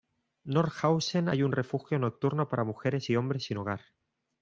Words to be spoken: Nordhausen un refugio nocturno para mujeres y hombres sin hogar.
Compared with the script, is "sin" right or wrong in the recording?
right